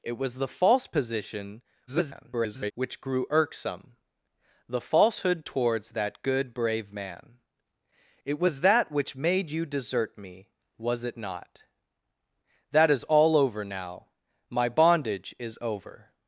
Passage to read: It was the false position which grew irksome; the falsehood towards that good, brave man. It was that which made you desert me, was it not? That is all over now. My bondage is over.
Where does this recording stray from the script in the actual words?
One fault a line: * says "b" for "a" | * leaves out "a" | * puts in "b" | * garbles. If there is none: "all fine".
* garbles